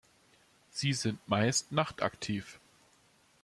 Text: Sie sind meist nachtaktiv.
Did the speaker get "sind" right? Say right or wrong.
right